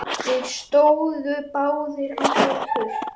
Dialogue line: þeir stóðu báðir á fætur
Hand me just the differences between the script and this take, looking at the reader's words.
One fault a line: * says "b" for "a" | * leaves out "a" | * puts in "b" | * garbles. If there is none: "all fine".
all fine